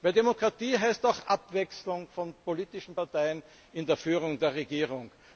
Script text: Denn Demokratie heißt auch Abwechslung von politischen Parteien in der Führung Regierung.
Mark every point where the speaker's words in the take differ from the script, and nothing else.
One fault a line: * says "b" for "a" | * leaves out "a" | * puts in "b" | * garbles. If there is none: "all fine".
* puts in "der"